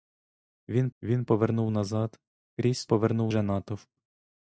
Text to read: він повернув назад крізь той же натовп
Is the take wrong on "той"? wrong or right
wrong